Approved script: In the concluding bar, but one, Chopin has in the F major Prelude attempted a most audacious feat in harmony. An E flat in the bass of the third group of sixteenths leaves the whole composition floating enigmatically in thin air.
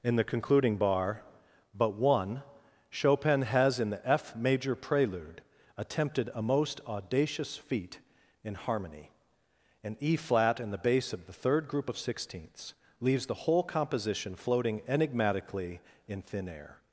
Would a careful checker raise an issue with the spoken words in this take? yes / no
no